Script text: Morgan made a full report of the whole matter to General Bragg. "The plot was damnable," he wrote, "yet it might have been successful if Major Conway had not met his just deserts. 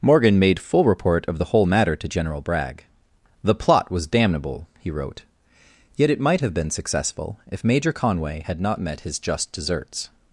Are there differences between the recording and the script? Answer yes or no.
yes